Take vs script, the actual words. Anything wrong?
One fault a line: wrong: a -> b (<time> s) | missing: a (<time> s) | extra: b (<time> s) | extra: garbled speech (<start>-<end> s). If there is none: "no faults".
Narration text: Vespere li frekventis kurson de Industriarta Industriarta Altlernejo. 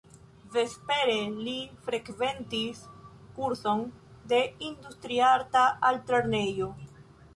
missing: Industriarta (5.6 s)